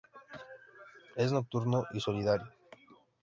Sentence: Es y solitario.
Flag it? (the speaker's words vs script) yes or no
yes